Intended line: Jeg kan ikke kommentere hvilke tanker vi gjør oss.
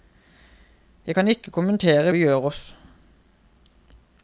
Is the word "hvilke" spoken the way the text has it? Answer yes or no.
no